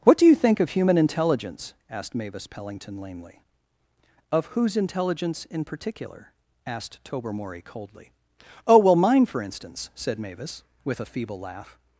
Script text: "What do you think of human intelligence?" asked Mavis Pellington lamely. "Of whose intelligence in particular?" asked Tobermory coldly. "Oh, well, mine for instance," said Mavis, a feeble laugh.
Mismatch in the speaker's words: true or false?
true